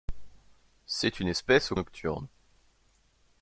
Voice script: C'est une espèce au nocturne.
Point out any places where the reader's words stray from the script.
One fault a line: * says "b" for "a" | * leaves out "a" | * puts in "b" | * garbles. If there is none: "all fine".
all fine